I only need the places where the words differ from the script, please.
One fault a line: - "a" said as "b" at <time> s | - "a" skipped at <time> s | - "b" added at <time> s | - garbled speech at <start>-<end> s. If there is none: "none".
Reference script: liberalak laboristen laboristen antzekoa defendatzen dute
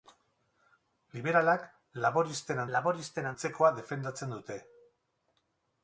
none